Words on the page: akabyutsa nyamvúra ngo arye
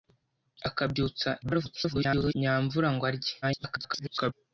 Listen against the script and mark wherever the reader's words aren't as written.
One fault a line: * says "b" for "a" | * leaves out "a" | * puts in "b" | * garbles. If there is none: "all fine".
* garbles
* garbles